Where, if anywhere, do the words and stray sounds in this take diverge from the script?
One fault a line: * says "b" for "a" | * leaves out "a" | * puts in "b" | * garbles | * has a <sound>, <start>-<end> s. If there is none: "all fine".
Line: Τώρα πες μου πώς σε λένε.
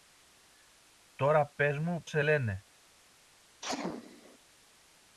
* leaves out "πώς"
* has a sneeze, 3.6-4.4 s